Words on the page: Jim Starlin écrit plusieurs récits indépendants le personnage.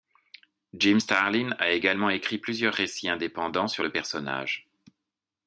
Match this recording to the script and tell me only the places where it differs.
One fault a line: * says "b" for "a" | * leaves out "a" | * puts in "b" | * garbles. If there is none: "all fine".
* puts in "a également"
* puts in "sur"